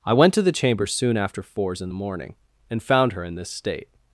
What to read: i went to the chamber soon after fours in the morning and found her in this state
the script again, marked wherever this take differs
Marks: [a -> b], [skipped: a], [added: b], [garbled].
i went to the chamber soon after fours in the morning and found her in this state